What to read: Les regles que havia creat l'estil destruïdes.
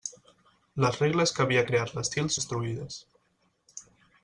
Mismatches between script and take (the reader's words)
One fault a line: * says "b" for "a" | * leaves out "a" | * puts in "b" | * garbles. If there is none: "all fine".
all fine